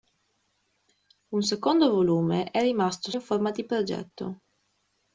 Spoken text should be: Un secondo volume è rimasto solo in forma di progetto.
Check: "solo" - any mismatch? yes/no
yes